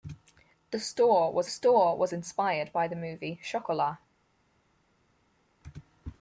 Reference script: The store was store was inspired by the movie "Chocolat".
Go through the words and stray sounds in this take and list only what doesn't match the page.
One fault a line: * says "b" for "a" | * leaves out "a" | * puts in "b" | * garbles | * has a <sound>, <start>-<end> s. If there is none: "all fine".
all fine